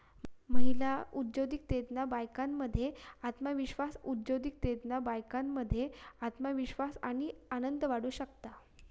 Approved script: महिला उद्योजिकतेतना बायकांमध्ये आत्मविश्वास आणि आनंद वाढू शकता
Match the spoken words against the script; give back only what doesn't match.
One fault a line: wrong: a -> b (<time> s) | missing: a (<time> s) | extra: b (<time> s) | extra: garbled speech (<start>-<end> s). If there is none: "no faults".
extra: उद्योजिकतेतना बायकांमध्ये आत्मविश्वास (4.0 s)